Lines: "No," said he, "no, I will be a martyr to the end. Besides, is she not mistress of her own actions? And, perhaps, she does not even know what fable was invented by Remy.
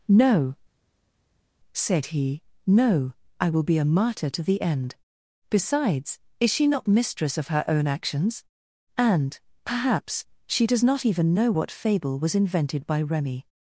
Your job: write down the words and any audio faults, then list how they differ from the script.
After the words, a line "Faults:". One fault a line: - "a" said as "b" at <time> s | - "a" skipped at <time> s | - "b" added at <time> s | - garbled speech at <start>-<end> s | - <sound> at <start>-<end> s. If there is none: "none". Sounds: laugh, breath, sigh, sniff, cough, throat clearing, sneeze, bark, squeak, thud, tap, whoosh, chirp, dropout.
"No," said he, "no, I will be a martyr to the end. Besides, is she not mistress of her own actions? And, perhaps, she does not even know what fable was invented by Remy.
Faults:
none